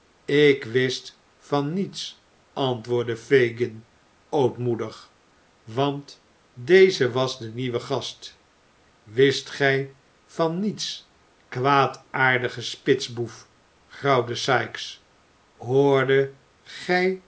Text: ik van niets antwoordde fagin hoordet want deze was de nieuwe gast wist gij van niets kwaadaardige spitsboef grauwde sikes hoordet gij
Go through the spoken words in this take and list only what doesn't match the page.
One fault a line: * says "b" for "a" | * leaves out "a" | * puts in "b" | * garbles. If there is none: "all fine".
* puts in "wist"
* says "ootmoedig" for "hoordet"